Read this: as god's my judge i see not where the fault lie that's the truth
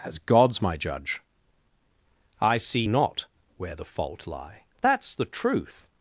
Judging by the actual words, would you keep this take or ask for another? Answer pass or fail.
pass